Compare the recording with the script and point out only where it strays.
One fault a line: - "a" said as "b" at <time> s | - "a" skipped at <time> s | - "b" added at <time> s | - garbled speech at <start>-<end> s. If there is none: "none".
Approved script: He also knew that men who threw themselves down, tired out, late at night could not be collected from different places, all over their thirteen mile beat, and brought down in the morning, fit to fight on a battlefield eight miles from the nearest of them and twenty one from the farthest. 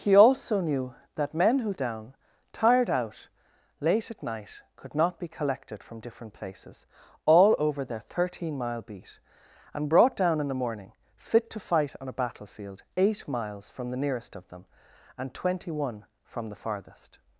- "threw themselves" skipped at 1.7 s